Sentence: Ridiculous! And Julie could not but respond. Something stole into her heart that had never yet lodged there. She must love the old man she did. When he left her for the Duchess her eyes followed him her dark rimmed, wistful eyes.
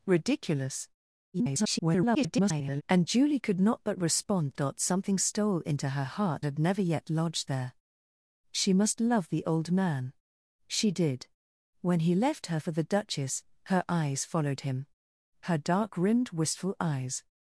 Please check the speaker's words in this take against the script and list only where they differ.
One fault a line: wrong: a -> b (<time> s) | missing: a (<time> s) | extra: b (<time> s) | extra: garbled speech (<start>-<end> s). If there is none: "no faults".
extra: garbled speech (1.3-2.8 s)
missing: that (6.5 s)